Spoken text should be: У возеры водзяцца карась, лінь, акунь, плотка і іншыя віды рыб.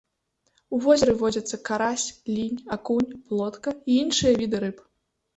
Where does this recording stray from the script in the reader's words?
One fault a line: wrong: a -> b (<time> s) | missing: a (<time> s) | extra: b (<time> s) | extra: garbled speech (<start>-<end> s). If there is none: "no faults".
no faults